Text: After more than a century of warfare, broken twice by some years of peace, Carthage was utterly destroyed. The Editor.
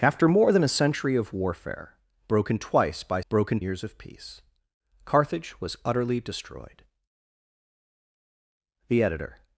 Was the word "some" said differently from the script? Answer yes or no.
yes